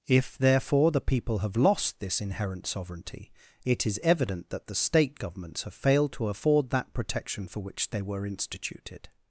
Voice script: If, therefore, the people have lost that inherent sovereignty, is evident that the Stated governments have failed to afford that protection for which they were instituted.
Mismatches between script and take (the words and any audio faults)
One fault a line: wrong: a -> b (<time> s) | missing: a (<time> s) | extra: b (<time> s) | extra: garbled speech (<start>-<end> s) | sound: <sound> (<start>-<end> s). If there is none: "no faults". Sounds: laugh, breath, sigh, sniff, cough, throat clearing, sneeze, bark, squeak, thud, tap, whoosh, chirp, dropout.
wrong: that -> this (2.0 s)
extra: it (3.6 s)
wrong: Stated -> State (4.8 s)